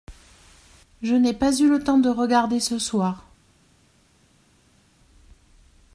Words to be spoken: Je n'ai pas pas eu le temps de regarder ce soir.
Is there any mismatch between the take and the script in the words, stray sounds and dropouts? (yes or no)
yes